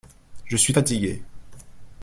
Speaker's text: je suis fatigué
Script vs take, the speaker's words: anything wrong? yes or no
no